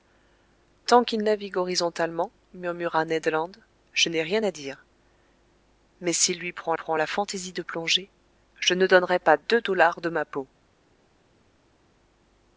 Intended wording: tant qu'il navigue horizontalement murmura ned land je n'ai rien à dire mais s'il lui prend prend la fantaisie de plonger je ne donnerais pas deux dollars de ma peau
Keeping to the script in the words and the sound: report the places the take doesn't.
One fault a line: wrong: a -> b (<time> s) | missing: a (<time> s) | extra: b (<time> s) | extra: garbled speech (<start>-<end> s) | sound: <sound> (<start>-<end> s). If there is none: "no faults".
no faults